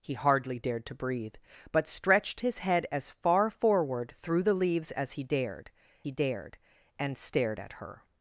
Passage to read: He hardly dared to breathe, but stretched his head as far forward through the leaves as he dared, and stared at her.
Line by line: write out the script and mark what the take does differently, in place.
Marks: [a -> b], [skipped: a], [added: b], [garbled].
He hardly dared to breathe, but stretched his head as far forward through the leaves as he dared, [added: he dared] and stared at her.